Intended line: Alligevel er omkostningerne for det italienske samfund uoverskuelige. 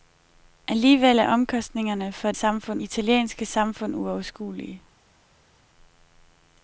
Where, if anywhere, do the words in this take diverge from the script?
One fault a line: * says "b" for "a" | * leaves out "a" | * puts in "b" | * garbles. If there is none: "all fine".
* says "samfund" for "det"